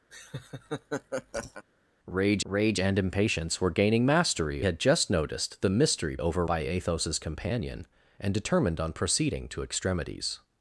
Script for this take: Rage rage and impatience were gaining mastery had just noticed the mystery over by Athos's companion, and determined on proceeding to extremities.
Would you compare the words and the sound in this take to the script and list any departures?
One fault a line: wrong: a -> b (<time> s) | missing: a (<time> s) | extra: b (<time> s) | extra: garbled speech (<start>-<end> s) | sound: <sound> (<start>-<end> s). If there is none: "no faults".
sound: laugh (0.1-1.6 s)